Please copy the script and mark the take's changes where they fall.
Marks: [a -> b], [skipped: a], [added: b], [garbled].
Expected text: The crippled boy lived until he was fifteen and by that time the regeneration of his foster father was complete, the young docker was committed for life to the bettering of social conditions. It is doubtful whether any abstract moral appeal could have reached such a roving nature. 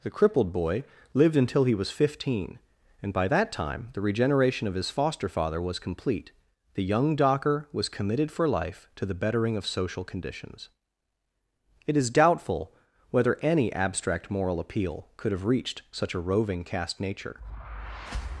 The crippled boy lived until he was fifteen and by that time the regeneration of his foster father was complete, the young docker was committed for life to the bettering of social conditions. It is doubtful whether any abstract moral appeal could have reached such a roving [added: caste] nature.